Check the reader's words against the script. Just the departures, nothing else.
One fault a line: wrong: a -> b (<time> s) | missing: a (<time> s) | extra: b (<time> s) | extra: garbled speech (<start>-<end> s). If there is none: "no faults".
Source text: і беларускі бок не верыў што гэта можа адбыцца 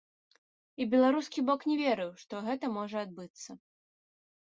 no faults